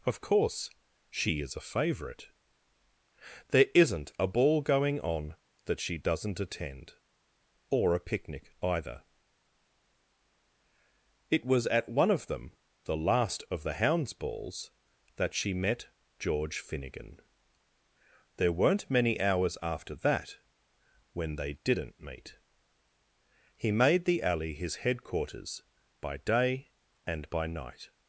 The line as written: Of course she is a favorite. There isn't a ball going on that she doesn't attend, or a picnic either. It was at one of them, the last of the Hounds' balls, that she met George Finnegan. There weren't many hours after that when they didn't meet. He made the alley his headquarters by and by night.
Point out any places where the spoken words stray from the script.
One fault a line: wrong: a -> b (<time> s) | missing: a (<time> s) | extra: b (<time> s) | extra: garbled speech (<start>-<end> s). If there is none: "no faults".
extra: day (26.2 s)